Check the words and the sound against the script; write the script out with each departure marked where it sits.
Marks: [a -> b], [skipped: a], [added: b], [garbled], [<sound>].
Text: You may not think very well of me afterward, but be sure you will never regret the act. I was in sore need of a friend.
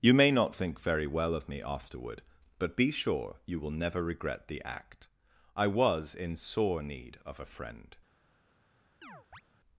You may not think very well of me afterward, but be sure you will never regret the act. I was in sore need of a friend. [chirp]